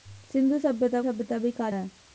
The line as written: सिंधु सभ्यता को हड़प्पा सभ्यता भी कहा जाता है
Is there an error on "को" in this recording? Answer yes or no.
yes